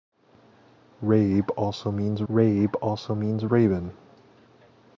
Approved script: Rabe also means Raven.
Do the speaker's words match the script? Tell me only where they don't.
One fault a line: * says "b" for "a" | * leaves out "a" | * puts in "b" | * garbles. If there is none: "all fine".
* puts in "rabe also means"